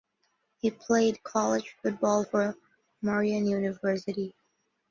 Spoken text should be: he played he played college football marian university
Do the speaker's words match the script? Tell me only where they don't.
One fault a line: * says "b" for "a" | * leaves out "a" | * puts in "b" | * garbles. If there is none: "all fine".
* leaves out "he played"
* puts in "for"